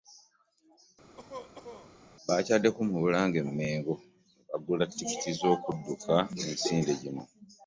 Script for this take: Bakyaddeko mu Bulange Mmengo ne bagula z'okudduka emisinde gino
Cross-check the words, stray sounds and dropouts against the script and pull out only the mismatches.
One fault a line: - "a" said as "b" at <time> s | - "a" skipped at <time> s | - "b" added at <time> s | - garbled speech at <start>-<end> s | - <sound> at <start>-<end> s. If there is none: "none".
- cough at 1.2-1.9 s
- "ttikiti" added at 4.9 s